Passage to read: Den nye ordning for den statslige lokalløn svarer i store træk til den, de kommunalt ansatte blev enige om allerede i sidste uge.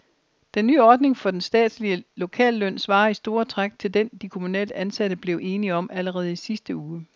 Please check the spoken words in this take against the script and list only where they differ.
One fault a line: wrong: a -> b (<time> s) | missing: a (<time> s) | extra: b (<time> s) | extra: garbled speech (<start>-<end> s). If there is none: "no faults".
no faults